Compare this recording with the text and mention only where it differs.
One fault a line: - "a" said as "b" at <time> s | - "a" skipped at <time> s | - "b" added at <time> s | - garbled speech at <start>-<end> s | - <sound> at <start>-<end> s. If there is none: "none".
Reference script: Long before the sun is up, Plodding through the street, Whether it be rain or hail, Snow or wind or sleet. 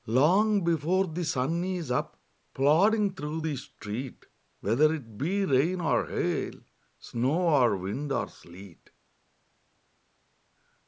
none